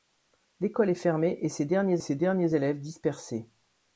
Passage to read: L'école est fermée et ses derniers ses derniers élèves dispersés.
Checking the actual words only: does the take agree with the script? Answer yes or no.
yes